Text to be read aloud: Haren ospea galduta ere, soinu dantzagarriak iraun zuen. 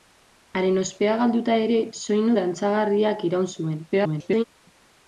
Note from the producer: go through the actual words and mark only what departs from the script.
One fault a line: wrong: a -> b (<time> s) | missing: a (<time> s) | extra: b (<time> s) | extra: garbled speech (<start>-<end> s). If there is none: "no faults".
extra: garbled speech (3.9-4.4 s)